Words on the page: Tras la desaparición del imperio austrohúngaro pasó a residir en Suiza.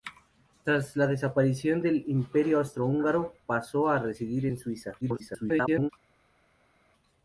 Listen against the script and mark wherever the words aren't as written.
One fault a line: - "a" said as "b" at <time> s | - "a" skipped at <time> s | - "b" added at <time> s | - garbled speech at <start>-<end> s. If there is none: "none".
- garbled speech at 5.0-5.9 s